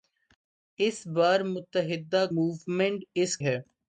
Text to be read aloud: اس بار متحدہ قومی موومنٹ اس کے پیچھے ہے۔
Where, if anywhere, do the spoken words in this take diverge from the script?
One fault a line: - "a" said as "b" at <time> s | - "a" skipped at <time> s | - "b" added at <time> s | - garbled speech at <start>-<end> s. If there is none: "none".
- "قومی" skipped at 2.2 s
- "کے پیچھے" skipped at 3.4 s